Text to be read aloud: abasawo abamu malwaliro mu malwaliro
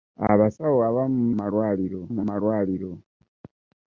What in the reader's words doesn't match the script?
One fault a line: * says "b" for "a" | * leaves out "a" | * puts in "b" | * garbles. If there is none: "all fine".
all fine